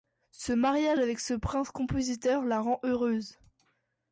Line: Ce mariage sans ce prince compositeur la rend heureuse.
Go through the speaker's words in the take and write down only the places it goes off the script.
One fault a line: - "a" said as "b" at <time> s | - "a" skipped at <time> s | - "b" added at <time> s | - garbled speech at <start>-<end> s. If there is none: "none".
- "sans" said as "avec" at 1.0 s